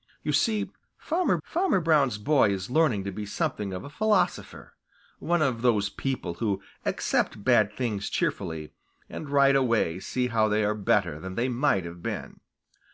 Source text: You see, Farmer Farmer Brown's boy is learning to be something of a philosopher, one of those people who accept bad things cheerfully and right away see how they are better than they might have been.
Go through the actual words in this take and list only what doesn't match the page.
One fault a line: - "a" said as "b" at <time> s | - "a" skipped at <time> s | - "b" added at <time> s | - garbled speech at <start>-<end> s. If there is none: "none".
none